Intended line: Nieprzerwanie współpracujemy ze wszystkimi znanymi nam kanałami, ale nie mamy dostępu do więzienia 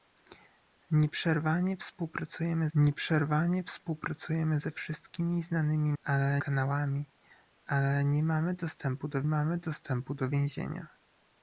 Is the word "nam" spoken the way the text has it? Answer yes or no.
no